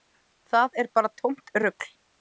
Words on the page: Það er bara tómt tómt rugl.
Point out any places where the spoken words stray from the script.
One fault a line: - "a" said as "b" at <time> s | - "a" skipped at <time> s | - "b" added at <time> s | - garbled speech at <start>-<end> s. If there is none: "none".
- "tómt" skipped at 1.6 s